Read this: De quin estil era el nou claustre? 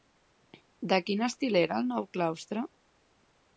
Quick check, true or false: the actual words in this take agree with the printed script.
true